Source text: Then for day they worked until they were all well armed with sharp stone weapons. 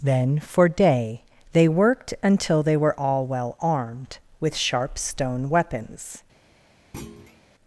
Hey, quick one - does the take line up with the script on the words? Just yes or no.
yes